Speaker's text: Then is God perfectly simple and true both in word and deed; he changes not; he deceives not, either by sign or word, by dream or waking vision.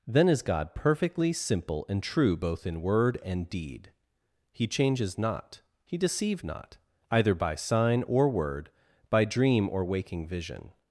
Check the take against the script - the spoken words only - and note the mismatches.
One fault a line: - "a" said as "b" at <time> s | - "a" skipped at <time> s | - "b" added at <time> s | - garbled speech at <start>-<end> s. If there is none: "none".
- "deceives" said as "deceive" at 6.0 s